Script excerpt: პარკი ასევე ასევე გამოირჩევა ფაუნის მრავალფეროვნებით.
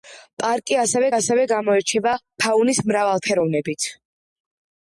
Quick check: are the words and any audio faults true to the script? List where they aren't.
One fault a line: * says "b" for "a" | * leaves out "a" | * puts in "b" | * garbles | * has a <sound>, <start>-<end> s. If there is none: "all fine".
all fine